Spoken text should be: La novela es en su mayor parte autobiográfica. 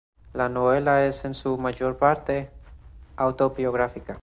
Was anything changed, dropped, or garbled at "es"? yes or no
no